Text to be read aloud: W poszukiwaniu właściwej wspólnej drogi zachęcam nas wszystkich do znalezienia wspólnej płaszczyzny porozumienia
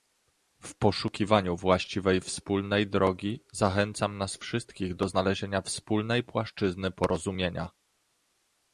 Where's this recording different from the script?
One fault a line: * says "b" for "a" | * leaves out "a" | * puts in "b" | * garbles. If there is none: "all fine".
all fine